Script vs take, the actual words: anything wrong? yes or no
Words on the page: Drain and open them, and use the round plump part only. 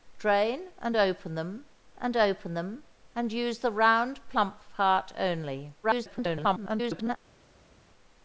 yes